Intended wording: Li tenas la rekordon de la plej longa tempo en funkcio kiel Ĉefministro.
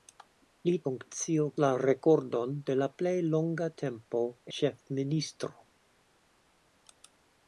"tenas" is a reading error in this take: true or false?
true